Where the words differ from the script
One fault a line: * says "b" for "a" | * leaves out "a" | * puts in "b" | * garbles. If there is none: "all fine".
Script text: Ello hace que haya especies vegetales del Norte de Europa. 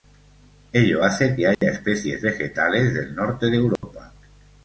all fine